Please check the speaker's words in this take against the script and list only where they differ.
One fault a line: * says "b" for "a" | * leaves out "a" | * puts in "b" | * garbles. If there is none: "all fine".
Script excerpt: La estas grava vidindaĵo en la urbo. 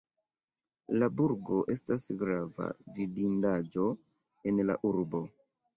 * puts in "burgo"